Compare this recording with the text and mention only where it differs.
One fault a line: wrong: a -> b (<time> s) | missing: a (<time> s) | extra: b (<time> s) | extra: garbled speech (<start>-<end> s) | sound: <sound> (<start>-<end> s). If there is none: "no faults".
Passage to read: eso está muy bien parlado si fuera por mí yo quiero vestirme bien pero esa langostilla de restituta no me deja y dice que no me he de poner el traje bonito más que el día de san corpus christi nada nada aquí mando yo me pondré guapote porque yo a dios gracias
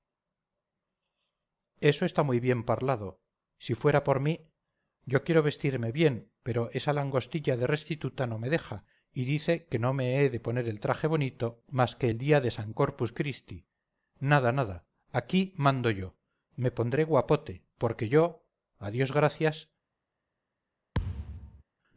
sound: thud (20.9-21.6 s)